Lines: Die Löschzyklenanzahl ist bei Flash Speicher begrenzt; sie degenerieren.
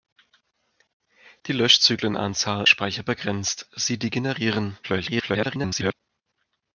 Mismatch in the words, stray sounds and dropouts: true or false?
true